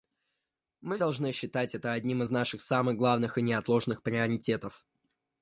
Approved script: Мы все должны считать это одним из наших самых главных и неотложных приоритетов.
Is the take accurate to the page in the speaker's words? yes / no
no